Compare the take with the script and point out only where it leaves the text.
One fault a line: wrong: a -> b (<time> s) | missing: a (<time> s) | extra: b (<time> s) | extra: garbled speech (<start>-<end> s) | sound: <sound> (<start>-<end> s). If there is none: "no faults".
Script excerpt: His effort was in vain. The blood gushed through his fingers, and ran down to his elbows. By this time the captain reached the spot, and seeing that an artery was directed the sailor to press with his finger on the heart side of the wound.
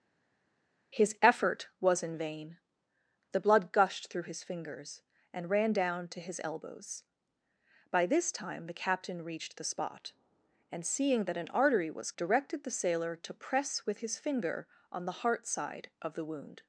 no faults